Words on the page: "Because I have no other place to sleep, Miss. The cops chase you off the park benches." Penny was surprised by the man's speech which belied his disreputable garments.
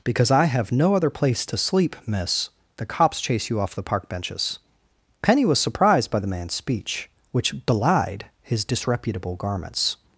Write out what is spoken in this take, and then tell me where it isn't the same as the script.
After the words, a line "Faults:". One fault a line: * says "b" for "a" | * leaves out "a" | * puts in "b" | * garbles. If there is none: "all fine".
"Because I have no other place to sleep, Miss. The cops chase you off the park benches." Penny was surprised by the man's speech which belied his disreputable garments.
Faults:
all fine